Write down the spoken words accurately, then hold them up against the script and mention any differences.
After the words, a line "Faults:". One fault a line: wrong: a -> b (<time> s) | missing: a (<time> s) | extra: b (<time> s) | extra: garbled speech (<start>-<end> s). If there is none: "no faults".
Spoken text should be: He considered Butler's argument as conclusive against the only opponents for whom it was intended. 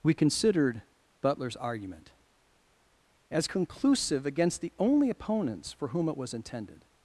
We considered Butler's argument as conclusive against the only opponents for whom it was intended.
Faults:
wrong: He -> We (0.0 s)